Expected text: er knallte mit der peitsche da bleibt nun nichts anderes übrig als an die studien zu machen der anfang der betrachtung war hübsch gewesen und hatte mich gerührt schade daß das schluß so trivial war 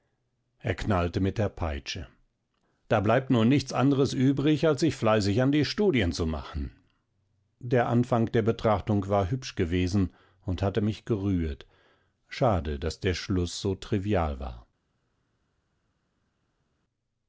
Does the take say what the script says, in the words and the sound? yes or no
no